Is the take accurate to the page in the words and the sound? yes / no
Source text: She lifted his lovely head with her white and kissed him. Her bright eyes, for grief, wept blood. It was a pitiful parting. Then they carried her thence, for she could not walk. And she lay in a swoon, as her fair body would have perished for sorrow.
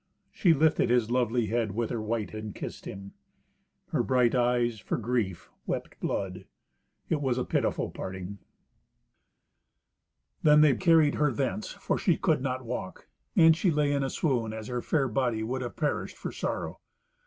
yes